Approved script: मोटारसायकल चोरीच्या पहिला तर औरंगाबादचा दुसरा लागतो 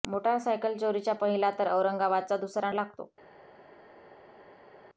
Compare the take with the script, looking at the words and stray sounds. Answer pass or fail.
pass